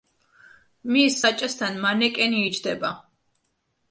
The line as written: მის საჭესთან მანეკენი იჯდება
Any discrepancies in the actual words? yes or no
no